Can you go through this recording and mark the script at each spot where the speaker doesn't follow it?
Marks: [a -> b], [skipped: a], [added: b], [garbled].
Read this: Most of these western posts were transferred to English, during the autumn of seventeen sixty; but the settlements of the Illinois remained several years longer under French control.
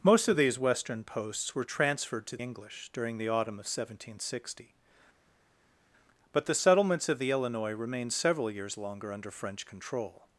Most of these western posts were transferred to English, during the autumn of seventeen sixty; but the settlements of the Illinois remained several years longer under French control.